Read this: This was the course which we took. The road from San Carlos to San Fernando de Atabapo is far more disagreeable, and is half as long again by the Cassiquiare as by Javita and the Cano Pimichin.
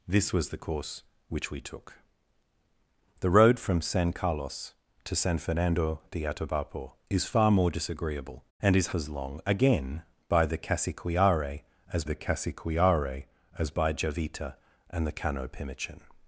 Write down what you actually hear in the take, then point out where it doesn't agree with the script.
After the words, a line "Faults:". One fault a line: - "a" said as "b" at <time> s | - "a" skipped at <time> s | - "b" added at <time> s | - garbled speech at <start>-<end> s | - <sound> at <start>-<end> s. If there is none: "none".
This was the course which we took. The road from San Carlos to San Fernando de Atabapo is far more disagreeable, and is as long again by the Cassiquiare as the Cassiquiare as by Javita and the Cano Pimichin.
Faults:
- "half" skipped at 8.9 s
- "the Cassiquiare as" added at 12.0 s